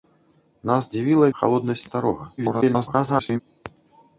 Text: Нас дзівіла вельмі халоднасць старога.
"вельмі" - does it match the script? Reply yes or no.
no